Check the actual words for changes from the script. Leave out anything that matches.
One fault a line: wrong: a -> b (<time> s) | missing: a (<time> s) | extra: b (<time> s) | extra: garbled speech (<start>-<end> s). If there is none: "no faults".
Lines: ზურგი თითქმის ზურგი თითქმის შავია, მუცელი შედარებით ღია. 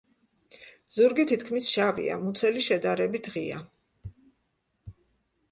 missing: ზურგი თითქმის (1.7 s)